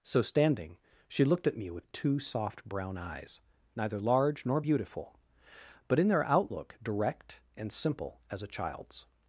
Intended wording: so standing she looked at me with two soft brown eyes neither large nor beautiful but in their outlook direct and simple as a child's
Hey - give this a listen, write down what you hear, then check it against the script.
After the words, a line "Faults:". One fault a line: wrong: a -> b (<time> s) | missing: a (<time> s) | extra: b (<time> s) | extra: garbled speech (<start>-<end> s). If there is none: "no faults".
so standing she looked at me with two soft brown eyes neither large nor beautiful but in their outlook direct and simple as a child's
Faults:
no faults